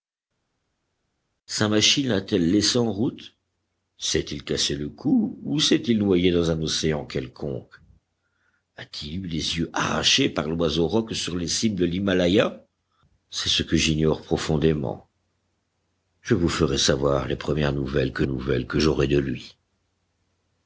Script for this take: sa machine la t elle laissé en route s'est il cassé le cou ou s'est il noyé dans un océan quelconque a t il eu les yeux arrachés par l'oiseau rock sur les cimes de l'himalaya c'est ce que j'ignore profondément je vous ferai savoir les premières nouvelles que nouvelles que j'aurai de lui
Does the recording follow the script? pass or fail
pass